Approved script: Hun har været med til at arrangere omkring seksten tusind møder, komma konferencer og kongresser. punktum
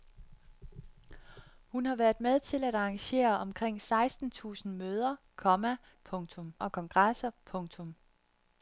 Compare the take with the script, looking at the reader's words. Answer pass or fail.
fail